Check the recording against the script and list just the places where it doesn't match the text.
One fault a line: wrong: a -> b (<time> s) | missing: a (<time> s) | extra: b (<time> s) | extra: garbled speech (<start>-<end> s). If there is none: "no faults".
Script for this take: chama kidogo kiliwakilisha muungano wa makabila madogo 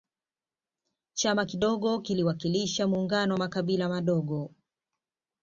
no faults